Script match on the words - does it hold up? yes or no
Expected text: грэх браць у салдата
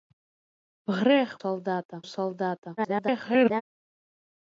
no